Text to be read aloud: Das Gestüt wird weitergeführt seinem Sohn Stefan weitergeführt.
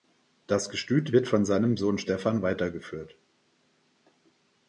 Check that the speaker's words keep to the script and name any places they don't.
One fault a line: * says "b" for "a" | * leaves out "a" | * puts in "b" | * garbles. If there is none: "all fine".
* says "von" for "weitergeführt"